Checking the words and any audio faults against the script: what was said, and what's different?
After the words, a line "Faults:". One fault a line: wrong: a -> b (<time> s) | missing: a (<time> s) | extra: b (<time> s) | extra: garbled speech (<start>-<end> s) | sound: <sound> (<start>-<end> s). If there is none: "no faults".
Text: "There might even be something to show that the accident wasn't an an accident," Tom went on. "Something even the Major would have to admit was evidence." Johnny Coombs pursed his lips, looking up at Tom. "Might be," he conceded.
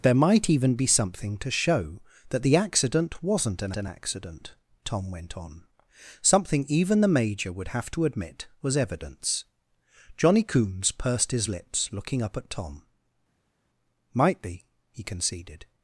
"There might even be something to show that the accident wasn't an an accident," Tom went on. "Something even the Major would have to admit was evidence." Johnny Coombs pursed his lips, looking up at Tom. "Might be," he conceded.
Faults:
no faults